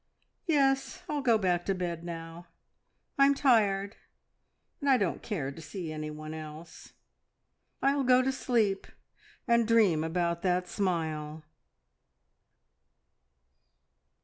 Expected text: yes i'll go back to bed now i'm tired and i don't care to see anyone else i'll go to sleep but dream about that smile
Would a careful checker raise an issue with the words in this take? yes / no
yes